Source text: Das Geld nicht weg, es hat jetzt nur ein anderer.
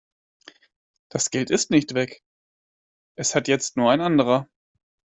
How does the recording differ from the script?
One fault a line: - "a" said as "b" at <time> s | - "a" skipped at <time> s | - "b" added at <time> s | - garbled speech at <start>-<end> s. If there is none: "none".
- "ist" added at 1.5 s